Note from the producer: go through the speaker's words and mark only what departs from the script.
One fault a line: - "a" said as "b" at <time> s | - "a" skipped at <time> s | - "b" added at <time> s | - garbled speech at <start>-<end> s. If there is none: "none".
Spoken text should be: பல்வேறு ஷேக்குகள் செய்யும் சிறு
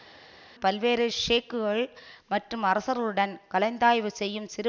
- "மற்றும் அரசர்களுடன் கலந்தாய்வு" added at 2.3 s